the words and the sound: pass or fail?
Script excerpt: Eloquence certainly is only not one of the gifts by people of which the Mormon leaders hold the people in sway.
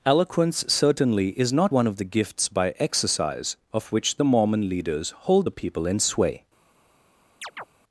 fail